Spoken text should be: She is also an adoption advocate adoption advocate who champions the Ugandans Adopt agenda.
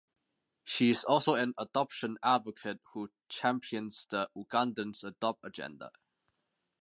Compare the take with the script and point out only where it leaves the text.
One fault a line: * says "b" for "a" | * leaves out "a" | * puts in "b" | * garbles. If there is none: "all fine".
* leaves out "adoption advocate"